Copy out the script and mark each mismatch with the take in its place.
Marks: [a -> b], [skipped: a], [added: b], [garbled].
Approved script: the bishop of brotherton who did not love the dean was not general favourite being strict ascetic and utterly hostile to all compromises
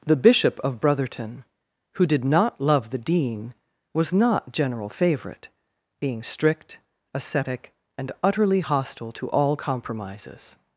the bishop of brotherton who did not love the dean was not general favourite being strict ascetic and utterly hostile to all compromises